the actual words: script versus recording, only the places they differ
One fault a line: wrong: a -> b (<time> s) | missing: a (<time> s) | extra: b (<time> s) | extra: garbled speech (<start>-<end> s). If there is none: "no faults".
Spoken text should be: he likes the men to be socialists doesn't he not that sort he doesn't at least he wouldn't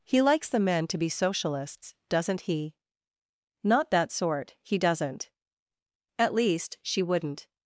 wrong: he -> she (6.8 s)